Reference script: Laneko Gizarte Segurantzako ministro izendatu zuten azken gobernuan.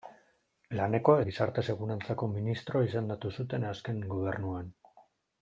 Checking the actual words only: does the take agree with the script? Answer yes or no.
yes